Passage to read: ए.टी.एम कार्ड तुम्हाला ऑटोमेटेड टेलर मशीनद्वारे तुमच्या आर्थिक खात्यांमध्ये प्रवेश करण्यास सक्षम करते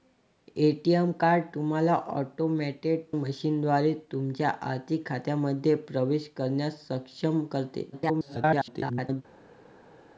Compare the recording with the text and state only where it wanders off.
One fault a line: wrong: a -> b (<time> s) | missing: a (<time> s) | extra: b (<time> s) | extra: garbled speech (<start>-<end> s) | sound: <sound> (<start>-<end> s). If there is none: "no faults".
missing: टेलर (3.0 s)
extra: garbled speech (7.9-9.2 s)